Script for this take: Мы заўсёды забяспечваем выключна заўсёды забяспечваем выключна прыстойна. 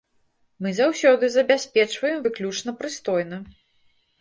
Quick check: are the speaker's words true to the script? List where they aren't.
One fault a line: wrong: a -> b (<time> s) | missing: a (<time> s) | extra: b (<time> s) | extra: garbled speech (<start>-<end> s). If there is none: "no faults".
missing: заўсёды забяспечваем выключна (2.8 s)